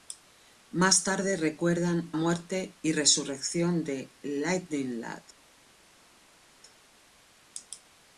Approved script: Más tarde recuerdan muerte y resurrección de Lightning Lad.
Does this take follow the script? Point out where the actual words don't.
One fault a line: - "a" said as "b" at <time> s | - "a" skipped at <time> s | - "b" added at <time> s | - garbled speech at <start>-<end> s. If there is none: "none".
none